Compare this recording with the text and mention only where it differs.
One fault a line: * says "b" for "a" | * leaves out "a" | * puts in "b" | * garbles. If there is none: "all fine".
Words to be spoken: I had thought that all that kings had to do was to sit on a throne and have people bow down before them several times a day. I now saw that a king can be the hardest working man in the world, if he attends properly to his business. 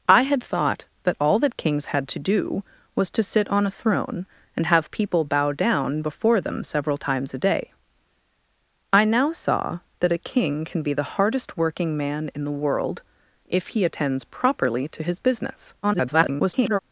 * garbles